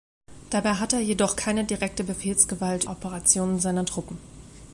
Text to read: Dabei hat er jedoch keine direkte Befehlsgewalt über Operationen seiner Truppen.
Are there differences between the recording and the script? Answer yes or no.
yes